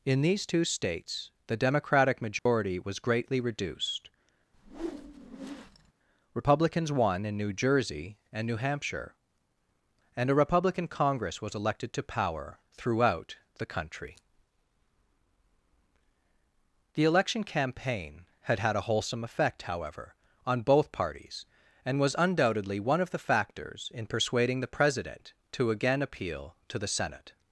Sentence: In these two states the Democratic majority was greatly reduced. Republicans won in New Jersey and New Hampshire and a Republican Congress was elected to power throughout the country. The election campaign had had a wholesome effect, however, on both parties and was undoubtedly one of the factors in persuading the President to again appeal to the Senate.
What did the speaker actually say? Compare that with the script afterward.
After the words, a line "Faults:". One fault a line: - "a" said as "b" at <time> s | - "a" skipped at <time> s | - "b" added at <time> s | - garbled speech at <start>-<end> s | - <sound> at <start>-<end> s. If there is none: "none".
In these two states the Democratic majority was greatly reduced. Republicans won in New Jersey and New Hampshire and a Republican Congress was elected to power throughout the country. The election campaign had had a wholesome effect, however, on both parties and was undoubtedly one of the factors in persuading the President to again appeal to the Senate.
Faults:
- dropout at 2.4-2.5 s
- whoosh at 4.5-5.9 s